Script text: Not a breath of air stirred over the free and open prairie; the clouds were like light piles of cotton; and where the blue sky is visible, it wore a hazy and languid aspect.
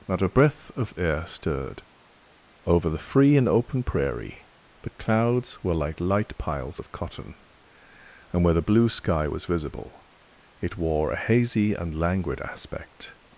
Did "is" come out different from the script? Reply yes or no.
yes